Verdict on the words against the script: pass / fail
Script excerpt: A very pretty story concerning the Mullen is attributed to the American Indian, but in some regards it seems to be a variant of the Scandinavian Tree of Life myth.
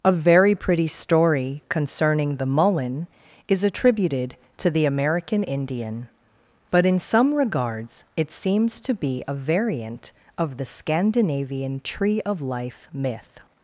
pass